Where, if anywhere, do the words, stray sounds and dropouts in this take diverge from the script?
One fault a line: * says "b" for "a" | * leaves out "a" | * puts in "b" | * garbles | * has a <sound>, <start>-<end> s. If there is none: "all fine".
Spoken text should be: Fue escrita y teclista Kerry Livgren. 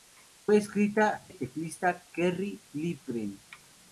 all fine